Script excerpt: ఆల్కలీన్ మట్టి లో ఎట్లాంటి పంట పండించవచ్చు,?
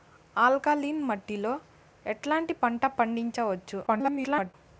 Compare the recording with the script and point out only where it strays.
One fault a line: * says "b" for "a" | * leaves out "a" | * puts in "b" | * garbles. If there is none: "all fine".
* garbles